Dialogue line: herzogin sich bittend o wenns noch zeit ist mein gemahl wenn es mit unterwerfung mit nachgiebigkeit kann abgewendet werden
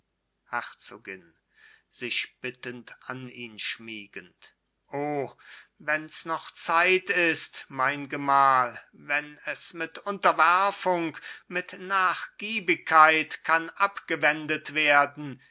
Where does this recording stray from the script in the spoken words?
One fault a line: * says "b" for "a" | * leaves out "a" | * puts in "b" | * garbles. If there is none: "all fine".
* puts in "an ihn schmiegend"